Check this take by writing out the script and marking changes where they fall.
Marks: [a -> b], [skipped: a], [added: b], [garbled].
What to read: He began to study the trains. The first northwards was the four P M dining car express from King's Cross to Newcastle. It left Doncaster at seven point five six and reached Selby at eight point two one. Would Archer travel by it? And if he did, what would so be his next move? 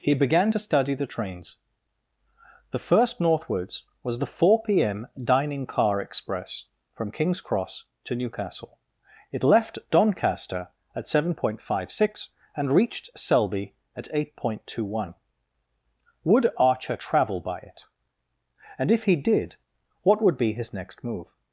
He began to study the trains. The first northwards was the four P M dining car express from King's Cross to Newcastle. It left Doncaster at seven point five six and reached Selby at eight point two one. Would Archer travel by it? And if he did, what would [skipped: so] be his next move?